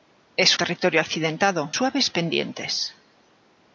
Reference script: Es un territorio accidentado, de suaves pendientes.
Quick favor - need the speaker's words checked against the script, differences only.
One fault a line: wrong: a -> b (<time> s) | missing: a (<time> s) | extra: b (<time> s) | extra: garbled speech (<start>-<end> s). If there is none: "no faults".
missing: un (0.6 s)
missing: de (1.7 s)